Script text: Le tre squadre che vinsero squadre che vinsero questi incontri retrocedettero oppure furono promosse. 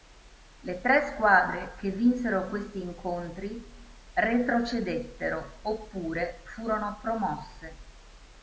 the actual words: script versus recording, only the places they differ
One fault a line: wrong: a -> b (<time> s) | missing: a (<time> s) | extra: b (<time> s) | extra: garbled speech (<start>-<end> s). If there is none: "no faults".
missing: squadre che vinsero (2.5 s)